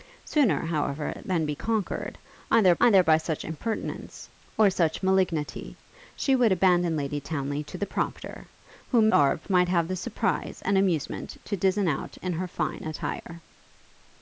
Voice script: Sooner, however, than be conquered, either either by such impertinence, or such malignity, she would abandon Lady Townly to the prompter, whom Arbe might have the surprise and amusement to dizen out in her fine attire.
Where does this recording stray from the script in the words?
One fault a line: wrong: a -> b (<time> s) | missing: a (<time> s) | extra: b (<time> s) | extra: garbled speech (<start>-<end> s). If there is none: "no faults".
no faults